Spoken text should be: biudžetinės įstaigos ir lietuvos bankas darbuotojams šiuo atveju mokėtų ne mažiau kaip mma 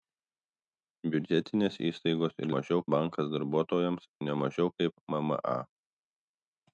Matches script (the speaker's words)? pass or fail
fail